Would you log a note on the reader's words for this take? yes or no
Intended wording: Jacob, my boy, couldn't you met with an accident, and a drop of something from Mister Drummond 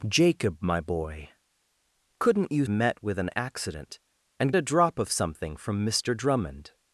no